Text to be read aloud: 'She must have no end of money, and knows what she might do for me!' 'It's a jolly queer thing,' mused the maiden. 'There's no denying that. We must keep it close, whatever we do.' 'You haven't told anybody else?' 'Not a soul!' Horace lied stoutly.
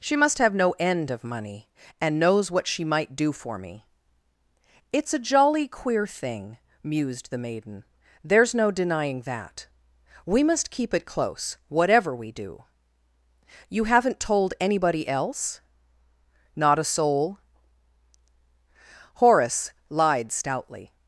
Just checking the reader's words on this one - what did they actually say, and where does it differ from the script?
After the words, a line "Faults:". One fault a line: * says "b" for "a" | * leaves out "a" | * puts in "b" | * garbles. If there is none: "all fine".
'She must have no end of money, and knows what she might do for me!' 'It's a jolly queer thing,' mused the maiden. 'There's no denying that. We must keep it close, whatever we do.' 'You haven't told anybody else?' 'Not a soul!' Horace lied stoutly.
Faults:
all fine